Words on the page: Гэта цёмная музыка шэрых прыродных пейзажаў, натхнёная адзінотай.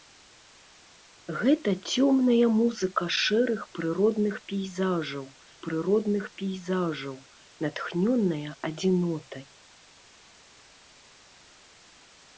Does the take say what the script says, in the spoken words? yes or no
no